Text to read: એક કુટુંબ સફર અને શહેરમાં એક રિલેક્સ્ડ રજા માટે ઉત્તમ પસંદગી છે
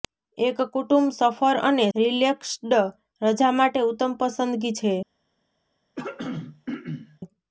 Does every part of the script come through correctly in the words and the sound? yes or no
no